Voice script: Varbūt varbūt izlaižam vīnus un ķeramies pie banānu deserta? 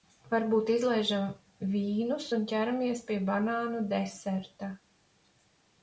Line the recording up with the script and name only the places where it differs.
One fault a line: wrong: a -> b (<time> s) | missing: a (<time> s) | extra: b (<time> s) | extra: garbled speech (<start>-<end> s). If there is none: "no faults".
missing: varbūt (0.7 s)